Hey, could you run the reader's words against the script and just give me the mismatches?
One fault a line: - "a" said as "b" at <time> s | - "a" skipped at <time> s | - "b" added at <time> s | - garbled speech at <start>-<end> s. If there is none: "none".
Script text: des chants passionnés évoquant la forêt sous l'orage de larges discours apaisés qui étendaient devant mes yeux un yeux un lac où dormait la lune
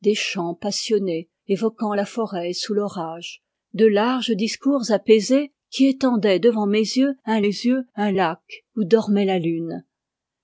none